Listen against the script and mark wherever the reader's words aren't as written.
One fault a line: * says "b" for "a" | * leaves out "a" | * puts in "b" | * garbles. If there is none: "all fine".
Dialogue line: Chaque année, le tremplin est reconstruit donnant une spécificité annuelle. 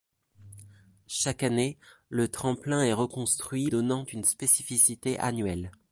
all fine